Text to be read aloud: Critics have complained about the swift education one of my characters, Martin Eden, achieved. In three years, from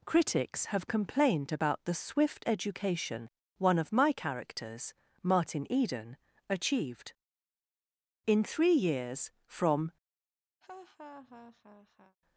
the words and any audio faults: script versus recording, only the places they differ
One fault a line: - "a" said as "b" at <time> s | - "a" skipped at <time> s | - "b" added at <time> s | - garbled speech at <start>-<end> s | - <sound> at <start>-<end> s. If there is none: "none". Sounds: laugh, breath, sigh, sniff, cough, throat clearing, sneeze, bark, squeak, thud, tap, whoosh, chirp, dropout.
- laugh at 10.6-12.2 s